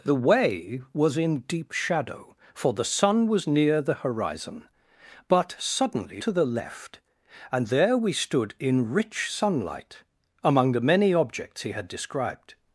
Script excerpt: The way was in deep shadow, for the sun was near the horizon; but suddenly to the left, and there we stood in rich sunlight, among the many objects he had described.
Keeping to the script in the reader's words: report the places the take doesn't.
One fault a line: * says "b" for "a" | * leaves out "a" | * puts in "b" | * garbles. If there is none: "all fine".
all fine